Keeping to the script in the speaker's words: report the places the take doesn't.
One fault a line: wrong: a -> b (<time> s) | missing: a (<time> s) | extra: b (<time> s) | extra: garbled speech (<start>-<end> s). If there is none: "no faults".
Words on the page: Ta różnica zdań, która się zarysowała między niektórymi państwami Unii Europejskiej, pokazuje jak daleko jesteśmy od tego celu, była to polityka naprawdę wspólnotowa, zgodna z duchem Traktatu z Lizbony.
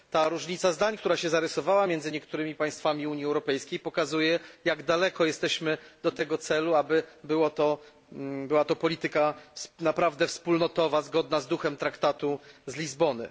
extra: aby (6.7 s)